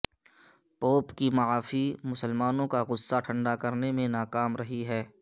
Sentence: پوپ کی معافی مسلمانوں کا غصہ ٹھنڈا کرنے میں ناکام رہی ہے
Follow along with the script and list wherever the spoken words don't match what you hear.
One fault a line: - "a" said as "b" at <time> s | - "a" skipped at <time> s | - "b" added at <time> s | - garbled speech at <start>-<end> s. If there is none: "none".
none